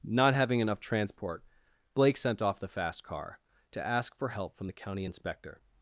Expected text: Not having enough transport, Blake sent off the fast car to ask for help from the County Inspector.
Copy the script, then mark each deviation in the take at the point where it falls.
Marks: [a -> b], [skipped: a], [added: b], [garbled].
Not having enough transport, Blake sent off the fast car to ask for help from the County Inspector.